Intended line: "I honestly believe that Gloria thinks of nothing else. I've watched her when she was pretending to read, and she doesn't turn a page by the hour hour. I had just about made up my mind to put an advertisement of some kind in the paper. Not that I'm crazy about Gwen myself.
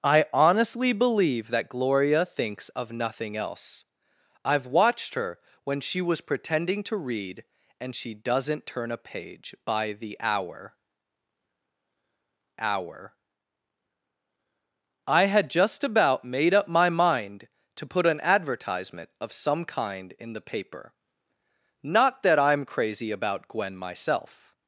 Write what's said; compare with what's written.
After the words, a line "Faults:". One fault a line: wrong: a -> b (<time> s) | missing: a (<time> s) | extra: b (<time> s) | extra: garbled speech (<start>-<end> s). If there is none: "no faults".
"I honestly believe that Gloria thinks of nothing else. I've watched her when she was pretending to read, and she doesn't turn a page by the hour hour. I had just about made up my mind to put an advertisement of some kind in the paper. Not that I'm crazy about Gwen myself.
Faults:
no faults